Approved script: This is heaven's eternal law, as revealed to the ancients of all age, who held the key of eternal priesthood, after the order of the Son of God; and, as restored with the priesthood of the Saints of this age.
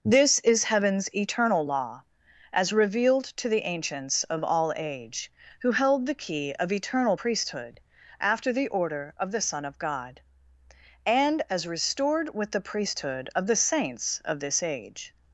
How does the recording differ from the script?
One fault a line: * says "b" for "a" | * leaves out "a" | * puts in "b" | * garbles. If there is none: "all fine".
all fine